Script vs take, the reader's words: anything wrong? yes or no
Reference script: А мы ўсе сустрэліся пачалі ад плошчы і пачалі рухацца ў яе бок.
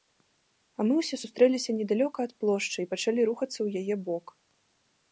yes